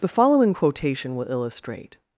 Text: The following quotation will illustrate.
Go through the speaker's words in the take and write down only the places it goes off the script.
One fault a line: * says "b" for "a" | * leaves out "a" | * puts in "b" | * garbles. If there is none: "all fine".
all fine